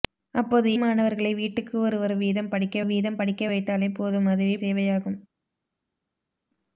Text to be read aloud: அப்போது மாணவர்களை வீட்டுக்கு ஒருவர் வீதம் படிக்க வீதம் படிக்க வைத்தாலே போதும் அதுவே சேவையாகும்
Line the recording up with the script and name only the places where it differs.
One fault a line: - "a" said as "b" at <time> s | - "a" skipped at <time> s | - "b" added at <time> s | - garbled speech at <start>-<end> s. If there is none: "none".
none